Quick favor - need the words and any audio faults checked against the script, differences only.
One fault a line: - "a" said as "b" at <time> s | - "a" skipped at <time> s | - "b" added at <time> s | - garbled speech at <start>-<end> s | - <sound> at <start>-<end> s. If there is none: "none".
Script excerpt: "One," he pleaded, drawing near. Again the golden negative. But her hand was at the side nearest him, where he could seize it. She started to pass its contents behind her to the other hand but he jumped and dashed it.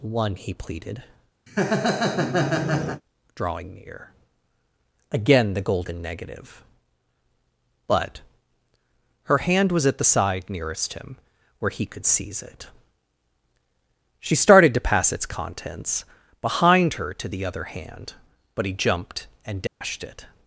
- laugh at 1.5-3.0 s
- dropout at 19.7-19.8 s